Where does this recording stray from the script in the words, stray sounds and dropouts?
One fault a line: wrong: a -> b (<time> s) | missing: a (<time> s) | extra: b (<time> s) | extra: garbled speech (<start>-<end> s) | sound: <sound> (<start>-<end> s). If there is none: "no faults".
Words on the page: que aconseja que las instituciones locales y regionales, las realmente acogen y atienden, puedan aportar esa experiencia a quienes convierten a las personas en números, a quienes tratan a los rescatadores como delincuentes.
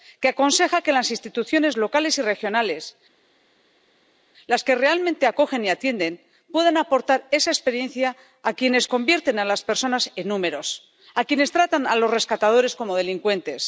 extra: que (4.6 s)